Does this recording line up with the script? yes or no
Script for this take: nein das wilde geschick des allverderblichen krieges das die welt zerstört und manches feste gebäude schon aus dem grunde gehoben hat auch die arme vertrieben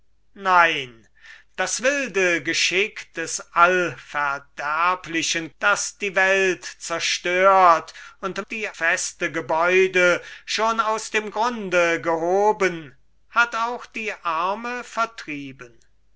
no